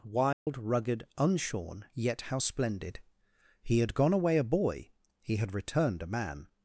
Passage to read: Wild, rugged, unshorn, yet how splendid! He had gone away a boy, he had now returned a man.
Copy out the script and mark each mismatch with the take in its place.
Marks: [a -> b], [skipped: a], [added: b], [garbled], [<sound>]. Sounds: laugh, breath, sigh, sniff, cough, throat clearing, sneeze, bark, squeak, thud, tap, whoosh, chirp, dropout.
Wild, [dropout] rugged, unshorn, yet how splendid! He had gone away a boy, he had [skipped: now] returned a man.